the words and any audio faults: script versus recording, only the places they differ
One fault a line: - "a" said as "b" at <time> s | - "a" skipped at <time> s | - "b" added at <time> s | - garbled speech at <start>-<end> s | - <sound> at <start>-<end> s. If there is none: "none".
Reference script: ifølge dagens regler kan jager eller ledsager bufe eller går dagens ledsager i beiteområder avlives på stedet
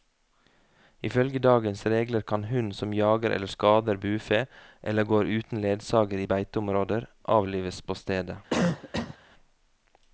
- "hund som" added at 2.5 s
- "ledsager" said as "skader" at 3.5 s
- "dagens" said as "uten" at 5.4 s
- cough at 8.5-9.2 s